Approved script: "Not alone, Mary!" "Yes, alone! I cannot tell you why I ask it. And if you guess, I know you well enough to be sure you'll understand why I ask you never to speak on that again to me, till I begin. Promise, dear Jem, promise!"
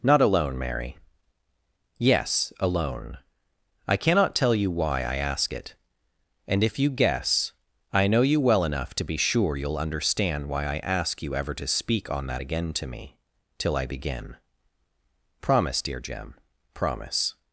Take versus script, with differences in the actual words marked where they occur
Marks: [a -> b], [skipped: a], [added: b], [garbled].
"Not alone, Mary!" "Yes, alone! I cannot tell you why I ask it. And if you guess, I know you well enough to be sure you'll understand why I ask you [never -> ever] to speak on that again to me, till I begin. Promise, dear Jem, promise!"